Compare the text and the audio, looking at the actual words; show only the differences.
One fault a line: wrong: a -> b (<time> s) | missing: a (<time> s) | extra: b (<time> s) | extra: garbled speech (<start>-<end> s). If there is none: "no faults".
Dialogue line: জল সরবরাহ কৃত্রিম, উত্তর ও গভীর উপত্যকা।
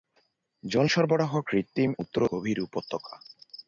no faults